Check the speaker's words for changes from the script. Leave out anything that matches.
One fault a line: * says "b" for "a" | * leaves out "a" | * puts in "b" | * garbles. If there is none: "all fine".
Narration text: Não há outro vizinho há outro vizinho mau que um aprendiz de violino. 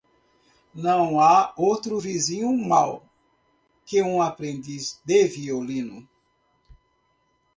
* leaves out "há outro vizinho"